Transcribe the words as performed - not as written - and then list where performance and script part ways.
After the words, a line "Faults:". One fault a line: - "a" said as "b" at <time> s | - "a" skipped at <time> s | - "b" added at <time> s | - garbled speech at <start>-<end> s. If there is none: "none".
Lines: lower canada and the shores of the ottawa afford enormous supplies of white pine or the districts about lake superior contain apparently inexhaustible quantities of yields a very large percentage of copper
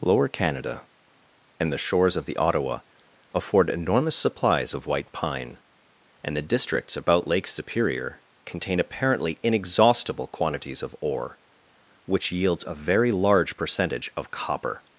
lower canada and the shores of the ottawa afford enormous supplies of white pine and the districts about lake superior contain apparently inexhaustible quantities of ore which yields a very large percentage of copper
Faults:
- "or" said as "and" at 6.2 s
- "ore which" added at 11.0 s